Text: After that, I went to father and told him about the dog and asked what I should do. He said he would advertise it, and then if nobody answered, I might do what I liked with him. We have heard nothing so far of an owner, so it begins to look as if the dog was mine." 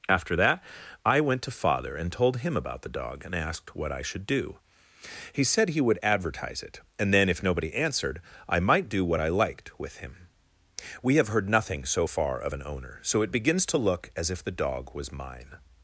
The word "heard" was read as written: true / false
true